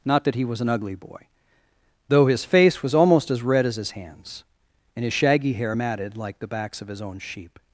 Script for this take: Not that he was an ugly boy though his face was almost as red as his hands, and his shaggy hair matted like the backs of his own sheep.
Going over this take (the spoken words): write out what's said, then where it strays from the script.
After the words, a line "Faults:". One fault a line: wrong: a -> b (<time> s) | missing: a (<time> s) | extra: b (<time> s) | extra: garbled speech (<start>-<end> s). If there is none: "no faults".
Not that he was an ugly boy though his face was almost as red as his hands, and his shaggy hair matted like the backs of his own sheep.
Faults:
no faults